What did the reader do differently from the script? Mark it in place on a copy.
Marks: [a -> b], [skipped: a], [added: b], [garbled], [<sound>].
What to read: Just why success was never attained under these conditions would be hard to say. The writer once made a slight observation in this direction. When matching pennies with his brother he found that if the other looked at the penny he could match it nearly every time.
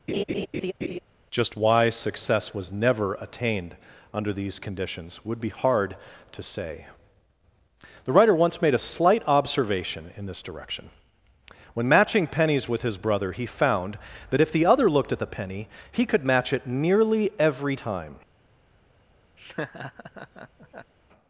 [laugh] Just why success was never attained under these conditions would be hard to say. The writer once made a slight observation in this direction. When matching pennies with his brother he found that if the other looked at the penny he could match it nearly every time. [laugh]